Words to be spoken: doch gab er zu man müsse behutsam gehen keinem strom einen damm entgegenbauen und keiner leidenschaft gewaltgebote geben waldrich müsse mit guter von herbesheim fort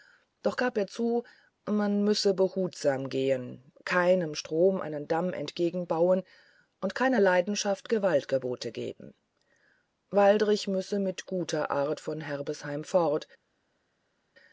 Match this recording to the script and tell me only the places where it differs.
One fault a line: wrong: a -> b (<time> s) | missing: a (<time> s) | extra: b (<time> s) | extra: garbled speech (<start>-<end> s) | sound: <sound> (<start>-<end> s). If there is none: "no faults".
extra: art (11.7 s)